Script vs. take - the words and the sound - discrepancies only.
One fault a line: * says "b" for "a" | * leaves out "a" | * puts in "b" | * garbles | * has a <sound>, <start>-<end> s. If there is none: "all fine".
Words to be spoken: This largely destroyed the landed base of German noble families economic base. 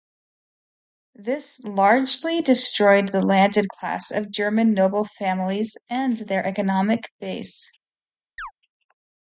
* says "class" for "base"
* puts in "and their"
* has a chirp, 8.4-8.5 s